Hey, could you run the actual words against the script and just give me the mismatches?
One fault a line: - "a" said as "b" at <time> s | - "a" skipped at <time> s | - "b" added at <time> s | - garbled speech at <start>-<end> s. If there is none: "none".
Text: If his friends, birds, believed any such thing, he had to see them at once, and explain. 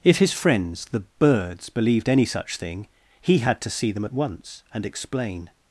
- "the" added at 0.8 s